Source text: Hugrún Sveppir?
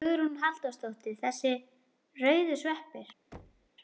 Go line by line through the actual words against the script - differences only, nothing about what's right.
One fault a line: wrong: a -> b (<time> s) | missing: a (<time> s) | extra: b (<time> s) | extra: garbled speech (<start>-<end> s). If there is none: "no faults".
extra: Halldórsdóttir Þessir rauðu (0.4 s)